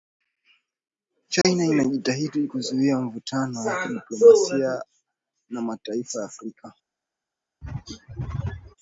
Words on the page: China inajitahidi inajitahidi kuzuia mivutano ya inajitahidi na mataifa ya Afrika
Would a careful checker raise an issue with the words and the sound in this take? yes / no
yes